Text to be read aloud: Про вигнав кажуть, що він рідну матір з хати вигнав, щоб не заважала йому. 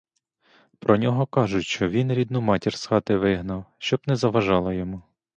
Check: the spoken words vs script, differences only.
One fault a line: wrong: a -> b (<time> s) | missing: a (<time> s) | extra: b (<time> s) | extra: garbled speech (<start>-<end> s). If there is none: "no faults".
wrong: вигнав -> нього (1.0 s)